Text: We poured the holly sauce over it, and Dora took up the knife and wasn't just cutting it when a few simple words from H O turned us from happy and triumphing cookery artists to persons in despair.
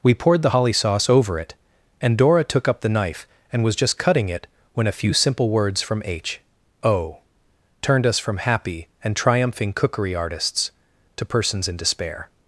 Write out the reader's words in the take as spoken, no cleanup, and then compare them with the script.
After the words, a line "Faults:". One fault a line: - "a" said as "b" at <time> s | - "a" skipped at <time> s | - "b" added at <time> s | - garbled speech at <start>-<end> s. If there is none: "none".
We poured the holly sauce over it, and Dora took up the knife and was just cutting it when a few simple words from H O turned us from happy and triumphing cookery artists to persons in despair.
Faults:
- "wasn't" said as "was" at 3.6 s